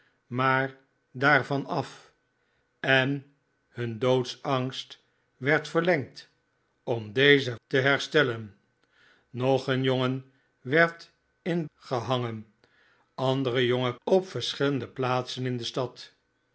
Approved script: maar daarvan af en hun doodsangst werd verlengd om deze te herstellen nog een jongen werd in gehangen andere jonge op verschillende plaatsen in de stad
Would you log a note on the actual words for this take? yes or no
no